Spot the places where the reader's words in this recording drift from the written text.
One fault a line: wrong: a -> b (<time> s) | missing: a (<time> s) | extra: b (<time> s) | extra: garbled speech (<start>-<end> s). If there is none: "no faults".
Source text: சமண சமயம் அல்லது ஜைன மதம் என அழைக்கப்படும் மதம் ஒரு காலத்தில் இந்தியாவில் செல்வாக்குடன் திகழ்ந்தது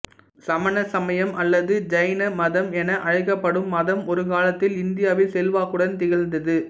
no faults